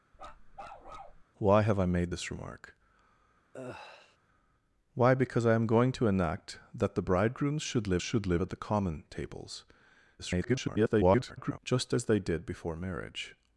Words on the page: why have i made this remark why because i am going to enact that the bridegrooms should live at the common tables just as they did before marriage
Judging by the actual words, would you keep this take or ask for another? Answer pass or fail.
fail